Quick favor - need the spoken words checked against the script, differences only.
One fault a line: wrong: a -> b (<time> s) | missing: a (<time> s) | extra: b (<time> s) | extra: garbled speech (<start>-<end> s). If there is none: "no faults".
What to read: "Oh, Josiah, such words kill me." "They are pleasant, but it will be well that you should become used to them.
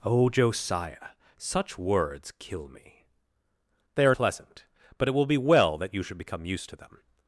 no faults